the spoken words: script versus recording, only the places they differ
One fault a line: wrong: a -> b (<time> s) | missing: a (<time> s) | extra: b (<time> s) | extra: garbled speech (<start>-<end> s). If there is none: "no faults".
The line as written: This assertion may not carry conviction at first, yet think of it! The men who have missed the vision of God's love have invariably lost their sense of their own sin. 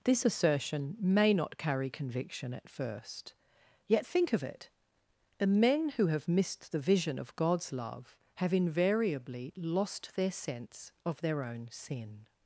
no faults